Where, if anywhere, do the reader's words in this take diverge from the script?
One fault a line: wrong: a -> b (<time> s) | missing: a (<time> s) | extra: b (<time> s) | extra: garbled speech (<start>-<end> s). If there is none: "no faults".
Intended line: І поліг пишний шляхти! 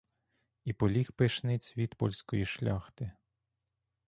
extra: цвіт польської (1.6 s)